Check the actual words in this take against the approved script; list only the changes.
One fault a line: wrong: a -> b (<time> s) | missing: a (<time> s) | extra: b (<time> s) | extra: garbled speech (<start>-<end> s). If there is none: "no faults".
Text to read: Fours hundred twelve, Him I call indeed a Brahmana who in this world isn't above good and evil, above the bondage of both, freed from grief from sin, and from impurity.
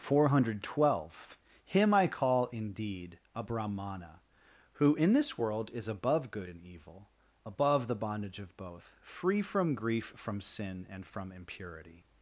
wrong: Fours -> Four (0.0 s)
wrong: isn't -> is (5.7 s)
wrong: freed -> free (9.0 s)